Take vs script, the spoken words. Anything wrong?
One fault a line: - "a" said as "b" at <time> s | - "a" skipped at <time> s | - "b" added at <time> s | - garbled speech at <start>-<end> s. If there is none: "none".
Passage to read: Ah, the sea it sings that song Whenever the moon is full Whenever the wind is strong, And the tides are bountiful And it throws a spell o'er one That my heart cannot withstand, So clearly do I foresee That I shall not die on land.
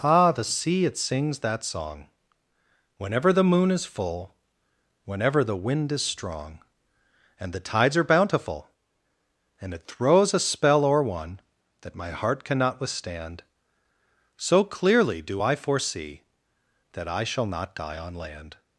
none